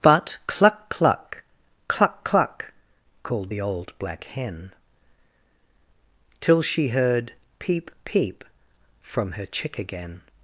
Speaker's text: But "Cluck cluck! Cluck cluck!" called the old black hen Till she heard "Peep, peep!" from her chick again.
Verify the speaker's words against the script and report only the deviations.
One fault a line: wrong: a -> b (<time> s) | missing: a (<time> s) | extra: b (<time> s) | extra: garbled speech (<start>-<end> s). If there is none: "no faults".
no faults